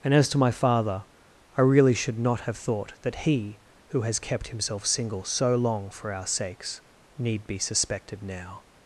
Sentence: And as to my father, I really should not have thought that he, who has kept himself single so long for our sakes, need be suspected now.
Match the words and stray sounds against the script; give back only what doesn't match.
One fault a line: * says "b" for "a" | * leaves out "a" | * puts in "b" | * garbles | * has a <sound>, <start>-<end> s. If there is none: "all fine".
all fine